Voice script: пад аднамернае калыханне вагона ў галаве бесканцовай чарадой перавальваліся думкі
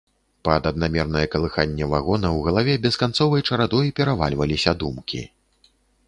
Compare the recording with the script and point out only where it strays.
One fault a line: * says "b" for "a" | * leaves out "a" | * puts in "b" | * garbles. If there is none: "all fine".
all fine